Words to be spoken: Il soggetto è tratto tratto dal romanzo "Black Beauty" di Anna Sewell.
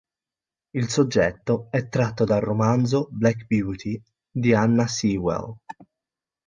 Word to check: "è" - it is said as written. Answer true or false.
true